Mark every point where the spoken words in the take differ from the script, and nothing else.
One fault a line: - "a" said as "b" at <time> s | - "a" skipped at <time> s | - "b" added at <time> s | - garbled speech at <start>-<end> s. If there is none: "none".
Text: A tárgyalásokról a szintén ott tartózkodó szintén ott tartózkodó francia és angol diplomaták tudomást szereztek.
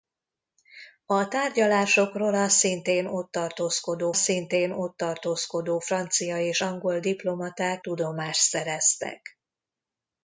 none